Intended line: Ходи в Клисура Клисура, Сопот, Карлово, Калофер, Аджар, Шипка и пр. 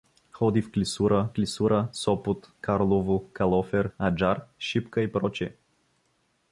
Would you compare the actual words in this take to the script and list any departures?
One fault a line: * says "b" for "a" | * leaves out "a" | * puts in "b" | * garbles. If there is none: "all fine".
all fine